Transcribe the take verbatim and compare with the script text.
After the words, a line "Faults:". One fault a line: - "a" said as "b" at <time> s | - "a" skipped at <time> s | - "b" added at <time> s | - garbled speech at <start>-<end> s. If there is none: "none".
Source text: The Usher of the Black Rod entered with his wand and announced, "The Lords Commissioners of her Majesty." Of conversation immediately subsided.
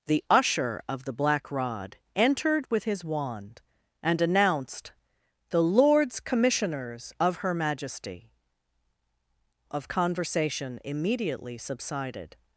The Usher of the Black Rod entered with his wand and announced, "The Lords Commissioners of her Majesty." Of conversation immediately subsided.
Faults:
none